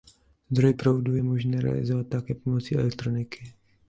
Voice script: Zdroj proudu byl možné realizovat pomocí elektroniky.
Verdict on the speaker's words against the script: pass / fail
fail